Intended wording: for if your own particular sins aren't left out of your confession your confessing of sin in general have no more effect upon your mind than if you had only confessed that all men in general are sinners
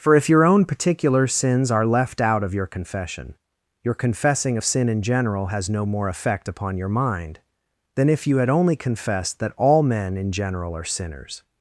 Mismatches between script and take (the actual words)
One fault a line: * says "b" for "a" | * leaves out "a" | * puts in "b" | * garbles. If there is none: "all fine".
* says "are" for "aren't"
* says "has" for "have"